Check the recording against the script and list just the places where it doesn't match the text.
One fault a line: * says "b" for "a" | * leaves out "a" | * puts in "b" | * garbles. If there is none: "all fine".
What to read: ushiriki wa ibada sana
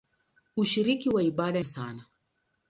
all fine